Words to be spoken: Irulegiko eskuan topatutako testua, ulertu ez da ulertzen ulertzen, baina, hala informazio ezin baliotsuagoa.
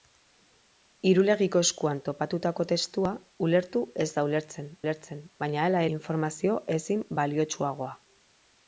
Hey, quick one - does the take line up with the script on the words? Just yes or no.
yes